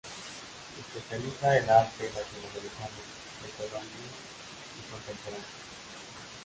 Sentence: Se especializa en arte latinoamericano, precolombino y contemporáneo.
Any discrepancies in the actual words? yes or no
no